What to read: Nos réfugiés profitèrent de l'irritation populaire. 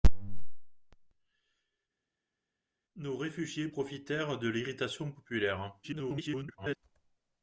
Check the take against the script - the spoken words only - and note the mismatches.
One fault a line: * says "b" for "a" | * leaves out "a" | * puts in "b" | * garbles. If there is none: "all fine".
* garbles